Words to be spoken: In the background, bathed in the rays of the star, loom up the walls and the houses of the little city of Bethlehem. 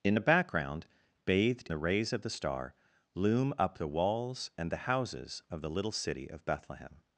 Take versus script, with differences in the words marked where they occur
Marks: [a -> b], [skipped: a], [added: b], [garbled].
In the background, bathed [skipped: in] the rays of the star, loom up the walls and the houses of the little city of Bethlehem.